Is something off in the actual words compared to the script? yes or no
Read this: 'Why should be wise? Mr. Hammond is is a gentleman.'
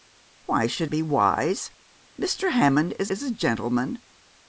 no